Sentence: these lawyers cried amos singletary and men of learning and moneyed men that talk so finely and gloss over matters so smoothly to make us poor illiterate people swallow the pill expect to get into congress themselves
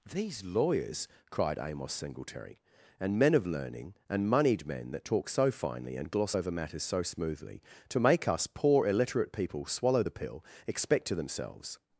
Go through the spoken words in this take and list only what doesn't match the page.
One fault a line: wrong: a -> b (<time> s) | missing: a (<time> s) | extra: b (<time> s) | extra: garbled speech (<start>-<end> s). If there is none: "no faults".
missing: get into congress (11.1 s)